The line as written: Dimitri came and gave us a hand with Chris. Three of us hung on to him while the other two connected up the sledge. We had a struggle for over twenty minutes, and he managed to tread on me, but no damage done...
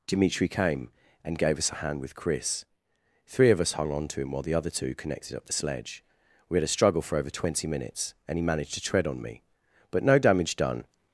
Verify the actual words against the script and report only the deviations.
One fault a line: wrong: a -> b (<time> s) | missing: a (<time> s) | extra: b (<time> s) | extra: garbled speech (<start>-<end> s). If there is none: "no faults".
no faults